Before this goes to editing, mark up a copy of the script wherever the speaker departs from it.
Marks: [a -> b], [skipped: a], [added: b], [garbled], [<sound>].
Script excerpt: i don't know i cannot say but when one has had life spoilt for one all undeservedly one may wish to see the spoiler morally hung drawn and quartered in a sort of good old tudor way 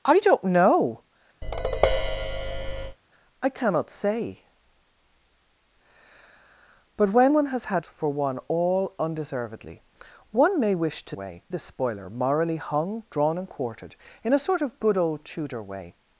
i don't know [tap] i cannot say but when one has had [skipped: life spoilt] for one all undeservedly one may wish to [see -> way] the spoiler morally hung drawn and quartered in a sort of good old tudor way